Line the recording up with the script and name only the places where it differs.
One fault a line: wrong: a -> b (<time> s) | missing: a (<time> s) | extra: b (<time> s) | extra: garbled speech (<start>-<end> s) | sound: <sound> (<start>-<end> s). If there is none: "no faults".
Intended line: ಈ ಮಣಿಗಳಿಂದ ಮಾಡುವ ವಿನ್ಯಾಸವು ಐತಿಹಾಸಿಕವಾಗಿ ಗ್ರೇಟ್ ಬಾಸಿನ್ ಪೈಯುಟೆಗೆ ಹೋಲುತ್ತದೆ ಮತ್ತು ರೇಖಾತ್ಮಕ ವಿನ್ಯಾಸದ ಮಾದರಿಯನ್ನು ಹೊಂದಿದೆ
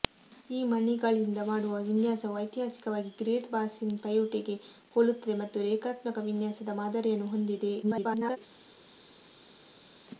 extra: garbled speech (7.8-8.4 s)